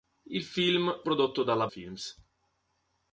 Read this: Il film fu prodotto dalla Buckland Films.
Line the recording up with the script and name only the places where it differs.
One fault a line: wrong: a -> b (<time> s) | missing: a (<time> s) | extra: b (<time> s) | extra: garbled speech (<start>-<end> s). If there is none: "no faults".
missing: fu (1.0 s)
missing: Buckland (1.7 s)